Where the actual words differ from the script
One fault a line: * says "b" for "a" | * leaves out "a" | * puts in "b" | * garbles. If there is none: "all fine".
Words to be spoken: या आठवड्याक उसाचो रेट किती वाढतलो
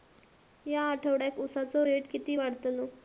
all fine